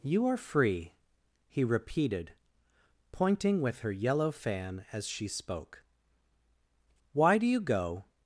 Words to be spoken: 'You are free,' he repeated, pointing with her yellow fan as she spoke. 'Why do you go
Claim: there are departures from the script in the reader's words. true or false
false